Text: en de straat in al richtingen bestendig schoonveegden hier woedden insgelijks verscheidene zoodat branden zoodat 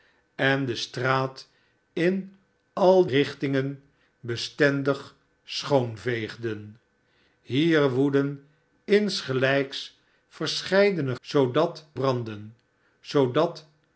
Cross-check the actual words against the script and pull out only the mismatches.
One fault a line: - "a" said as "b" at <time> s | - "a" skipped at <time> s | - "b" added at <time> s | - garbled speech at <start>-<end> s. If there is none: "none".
none